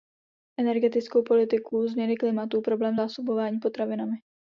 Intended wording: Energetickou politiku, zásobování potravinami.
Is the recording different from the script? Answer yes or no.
yes